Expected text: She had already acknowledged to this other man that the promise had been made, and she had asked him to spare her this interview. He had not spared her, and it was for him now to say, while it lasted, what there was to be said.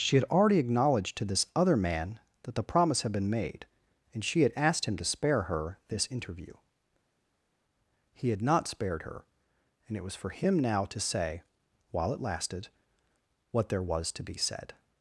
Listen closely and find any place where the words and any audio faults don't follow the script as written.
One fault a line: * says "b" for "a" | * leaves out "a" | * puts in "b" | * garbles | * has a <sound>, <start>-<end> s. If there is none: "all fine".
all fine